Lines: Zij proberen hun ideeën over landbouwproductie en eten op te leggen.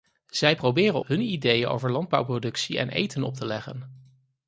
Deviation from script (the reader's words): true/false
false